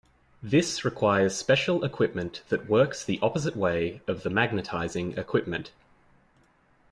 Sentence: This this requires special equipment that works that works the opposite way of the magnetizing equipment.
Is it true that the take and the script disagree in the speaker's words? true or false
true